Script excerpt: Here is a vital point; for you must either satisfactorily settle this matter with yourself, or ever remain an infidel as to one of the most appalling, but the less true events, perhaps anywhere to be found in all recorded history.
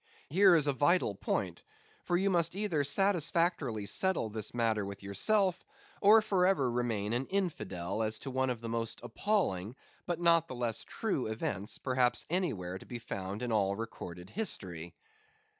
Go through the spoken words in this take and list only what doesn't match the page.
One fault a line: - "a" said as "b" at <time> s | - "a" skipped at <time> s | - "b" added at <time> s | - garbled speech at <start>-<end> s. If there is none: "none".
- "for" added at 6.2 s
- "not" added at 10.2 s